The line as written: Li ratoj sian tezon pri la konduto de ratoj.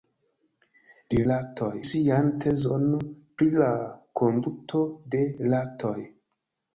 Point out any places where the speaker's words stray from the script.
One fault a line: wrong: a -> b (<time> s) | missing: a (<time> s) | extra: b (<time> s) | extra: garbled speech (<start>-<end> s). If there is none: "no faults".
no faults